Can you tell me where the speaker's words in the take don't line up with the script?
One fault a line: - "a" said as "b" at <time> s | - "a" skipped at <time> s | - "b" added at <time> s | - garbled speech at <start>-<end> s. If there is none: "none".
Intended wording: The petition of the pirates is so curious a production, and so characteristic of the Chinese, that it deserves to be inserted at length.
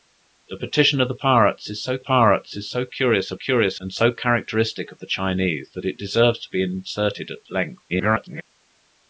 - "pirates is so" added at 2.0 s
- "production" said as "curious" at 3.3 s
- garbled speech at 7.9-8.4 s